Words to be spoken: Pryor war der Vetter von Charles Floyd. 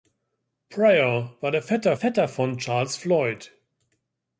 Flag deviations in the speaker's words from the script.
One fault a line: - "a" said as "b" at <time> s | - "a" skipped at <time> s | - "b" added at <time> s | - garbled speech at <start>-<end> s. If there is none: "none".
- "Vetter" added at 1.9 s